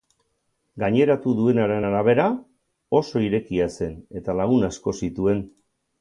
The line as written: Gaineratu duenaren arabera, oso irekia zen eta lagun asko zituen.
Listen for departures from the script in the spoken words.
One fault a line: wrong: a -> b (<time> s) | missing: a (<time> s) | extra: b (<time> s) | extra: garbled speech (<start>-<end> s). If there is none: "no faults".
no faults